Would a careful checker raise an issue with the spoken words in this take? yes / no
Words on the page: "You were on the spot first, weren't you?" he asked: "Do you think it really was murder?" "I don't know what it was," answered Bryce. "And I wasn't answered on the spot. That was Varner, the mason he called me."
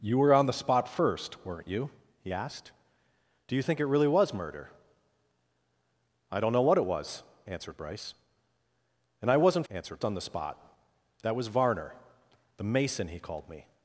no